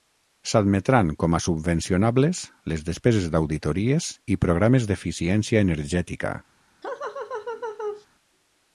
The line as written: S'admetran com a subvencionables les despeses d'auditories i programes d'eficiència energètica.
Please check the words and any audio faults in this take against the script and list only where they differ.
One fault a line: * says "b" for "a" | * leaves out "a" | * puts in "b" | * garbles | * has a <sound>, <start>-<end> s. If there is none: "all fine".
* has a laugh, 6.8-8.1 s